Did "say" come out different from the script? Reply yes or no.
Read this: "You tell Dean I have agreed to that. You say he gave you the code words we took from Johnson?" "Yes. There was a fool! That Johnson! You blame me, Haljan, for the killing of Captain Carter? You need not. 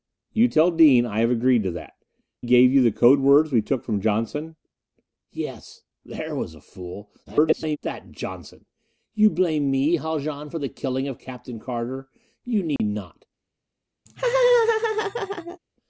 yes